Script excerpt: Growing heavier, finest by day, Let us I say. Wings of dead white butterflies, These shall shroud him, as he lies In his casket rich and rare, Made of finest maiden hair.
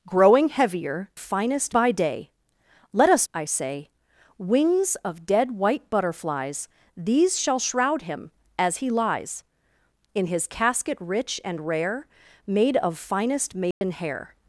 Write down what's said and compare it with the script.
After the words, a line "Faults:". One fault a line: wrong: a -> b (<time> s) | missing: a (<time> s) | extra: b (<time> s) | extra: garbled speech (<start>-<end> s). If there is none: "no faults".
Growing heavier, finest by day, Let us I say. Wings of dead white butterflies, These shall shroud him, as he lies In his casket rich and rare, Made of finest maiden hair.
Faults:
no faults